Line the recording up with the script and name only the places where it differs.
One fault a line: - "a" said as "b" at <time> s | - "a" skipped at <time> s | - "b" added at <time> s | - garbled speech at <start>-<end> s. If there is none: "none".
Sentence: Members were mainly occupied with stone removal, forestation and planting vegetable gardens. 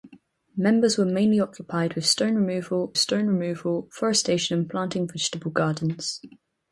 - "stone removal" added at 3.0 s